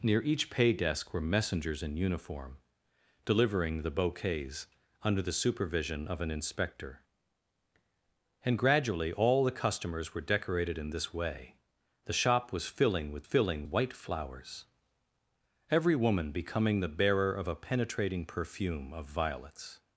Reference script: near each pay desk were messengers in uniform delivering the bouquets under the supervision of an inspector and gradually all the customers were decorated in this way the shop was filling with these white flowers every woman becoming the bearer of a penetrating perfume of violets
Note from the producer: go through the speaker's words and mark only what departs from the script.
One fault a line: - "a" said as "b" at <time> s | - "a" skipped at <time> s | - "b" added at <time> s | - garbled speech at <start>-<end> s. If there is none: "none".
- "these" said as "filling" at 13.2 s